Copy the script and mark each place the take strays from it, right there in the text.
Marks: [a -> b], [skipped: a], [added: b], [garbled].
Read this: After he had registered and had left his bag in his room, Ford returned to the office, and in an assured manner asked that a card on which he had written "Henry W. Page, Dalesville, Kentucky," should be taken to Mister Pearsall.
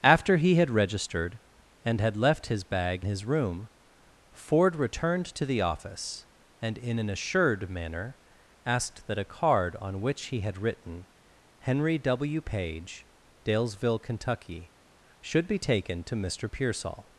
After he had registered and had left his bag [skipped: in] his room, Ford returned to the office, and in an assured manner asked that a card on which he had written "Henry W. Page, Dalesville, Kentucky," should be taken to Mister Pearsall.